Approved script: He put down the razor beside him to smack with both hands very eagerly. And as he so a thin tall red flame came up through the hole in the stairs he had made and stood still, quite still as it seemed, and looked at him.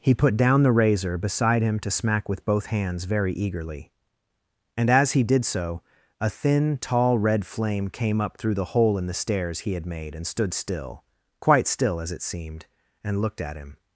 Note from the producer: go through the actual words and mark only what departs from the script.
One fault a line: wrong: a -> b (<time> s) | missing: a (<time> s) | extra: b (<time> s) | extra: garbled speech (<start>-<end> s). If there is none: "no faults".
extra: did (5.2 s)